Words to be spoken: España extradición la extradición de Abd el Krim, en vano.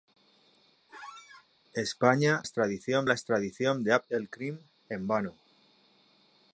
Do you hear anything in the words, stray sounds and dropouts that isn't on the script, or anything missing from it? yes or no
yes